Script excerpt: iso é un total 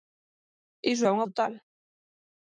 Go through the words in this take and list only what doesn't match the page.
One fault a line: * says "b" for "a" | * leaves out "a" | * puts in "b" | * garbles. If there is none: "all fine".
all fine